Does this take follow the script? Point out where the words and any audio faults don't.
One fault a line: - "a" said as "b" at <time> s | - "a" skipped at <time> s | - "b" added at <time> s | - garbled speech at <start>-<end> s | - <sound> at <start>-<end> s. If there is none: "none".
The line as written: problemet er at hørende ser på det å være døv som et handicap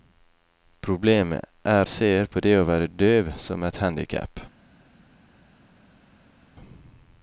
- "at hørende" skipped at 1.9 s